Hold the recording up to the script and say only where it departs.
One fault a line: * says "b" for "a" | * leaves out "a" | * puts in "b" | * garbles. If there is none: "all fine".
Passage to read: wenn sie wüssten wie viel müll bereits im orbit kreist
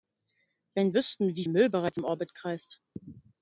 * leaves out "sie"
* leaves out "viel"